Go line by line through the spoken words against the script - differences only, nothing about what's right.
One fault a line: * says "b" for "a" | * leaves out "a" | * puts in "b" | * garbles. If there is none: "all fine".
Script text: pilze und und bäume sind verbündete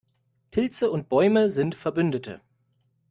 * leaves out "und"